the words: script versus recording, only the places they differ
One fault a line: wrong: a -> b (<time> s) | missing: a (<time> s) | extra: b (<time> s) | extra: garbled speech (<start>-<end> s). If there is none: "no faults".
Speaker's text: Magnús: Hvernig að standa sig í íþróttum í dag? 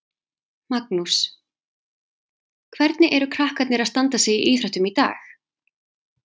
extra: eru krakkarnir (3.2 s)